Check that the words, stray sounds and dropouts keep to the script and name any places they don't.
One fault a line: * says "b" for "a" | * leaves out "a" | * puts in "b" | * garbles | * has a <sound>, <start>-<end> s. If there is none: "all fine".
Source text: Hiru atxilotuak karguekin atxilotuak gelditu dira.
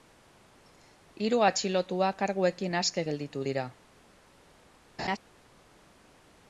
* says "aske" for "atxilotuak"
* has a laugh, 5.0-5.2 s